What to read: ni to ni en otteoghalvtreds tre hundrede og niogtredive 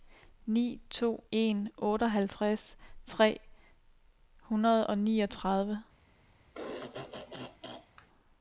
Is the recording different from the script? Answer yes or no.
yes